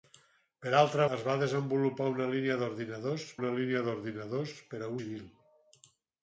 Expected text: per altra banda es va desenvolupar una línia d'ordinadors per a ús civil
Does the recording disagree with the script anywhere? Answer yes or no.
yes